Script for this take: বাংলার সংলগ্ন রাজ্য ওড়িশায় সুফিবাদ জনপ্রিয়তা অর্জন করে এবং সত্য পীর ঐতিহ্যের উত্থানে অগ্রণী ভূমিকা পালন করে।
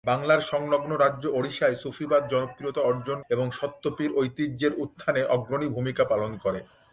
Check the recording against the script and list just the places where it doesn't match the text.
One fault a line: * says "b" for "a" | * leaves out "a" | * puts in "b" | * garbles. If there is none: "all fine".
* leaves out "করে"